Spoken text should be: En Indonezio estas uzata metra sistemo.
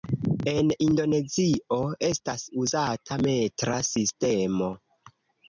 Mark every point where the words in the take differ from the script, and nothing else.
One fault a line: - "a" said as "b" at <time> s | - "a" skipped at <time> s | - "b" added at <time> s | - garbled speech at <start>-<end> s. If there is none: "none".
none